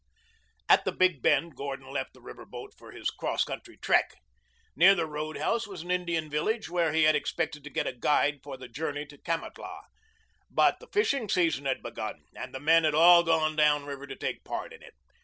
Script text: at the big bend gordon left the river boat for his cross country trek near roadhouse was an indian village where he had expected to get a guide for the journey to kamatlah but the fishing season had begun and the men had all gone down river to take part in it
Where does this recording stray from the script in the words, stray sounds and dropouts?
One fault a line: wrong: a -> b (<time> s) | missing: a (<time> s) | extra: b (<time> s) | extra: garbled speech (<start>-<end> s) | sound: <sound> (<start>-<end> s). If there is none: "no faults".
extra: the (4.9 s)